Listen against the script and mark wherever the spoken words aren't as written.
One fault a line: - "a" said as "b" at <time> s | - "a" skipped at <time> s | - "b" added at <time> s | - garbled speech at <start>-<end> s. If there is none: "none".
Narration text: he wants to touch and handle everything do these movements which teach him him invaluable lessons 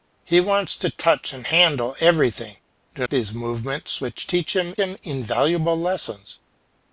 none